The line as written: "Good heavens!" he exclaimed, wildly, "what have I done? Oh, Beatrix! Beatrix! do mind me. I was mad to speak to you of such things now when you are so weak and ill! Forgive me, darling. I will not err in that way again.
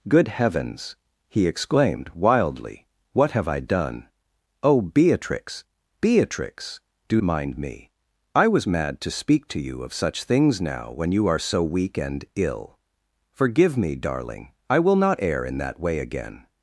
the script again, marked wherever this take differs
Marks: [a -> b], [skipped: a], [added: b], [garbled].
"Good heavens!" he exclaimed, wildly, "what have I done? Oh, Beatrix! Beatrix! do mind me. I was mad to speak to you of such things now when you are so weak and ill! Forgive me, darling. I will not err in that way again.